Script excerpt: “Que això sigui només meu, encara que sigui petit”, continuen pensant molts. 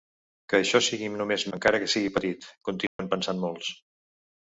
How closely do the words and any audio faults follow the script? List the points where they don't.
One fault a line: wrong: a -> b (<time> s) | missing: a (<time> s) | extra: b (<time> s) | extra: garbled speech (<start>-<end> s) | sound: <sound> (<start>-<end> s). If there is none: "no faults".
missing: meu (1.4 s)
sound: dropout (2.9-3.0 s)